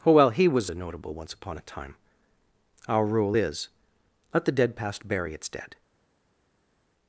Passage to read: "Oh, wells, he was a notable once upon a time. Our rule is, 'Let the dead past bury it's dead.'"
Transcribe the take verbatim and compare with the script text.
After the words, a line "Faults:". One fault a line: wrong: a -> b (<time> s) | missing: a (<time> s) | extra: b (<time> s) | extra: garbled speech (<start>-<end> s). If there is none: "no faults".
"Oh, well, he was a notable once upon a time. Our rule is, 'Let the dead past bury it's dead.'"
Faults:
wrong: wells -> well (0.1 s)